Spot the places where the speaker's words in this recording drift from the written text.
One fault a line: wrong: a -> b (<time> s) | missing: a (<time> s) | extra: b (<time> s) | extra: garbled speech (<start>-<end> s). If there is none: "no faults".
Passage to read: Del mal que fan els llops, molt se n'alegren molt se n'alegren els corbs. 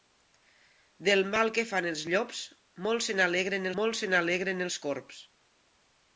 no faults